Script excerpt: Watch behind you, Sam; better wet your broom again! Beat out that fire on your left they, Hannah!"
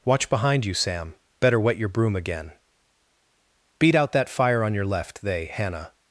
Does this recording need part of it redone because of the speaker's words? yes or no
no